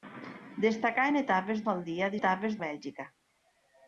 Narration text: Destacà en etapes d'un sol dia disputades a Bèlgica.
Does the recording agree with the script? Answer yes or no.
no